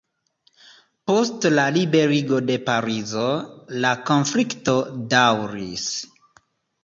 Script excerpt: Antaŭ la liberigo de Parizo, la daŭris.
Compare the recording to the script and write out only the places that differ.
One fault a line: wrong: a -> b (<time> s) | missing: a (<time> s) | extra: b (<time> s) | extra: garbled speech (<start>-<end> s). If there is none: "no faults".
wrong: Antaŭ -> Post (1.1 s)
extra: konflikto (4.1 s)